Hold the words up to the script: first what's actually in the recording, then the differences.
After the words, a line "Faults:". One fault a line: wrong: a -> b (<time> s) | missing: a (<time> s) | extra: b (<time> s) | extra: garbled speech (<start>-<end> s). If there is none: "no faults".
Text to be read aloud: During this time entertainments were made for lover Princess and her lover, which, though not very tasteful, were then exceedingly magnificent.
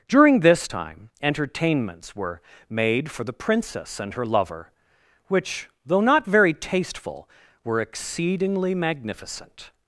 During this time entertainments were made for the Princess and her lover, which, though not very tasteful, were exceedingly magnificent.
Faults:
wrong: lover -> the (3.2 s)
missing: then (7.8 s)